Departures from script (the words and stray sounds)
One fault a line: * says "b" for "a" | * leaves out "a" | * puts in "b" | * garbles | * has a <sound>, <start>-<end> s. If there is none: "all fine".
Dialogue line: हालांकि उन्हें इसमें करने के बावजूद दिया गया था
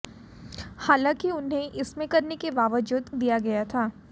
all fine